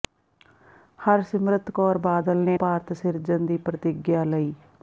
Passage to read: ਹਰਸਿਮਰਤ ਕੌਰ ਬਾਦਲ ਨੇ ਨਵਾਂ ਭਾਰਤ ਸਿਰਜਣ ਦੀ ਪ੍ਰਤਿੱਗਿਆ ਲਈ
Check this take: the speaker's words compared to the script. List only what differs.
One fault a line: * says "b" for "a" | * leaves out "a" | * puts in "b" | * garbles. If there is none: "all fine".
* leaves out "ਨਵਾਂ"